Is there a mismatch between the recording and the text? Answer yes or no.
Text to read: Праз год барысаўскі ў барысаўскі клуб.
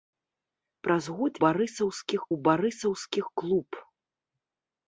no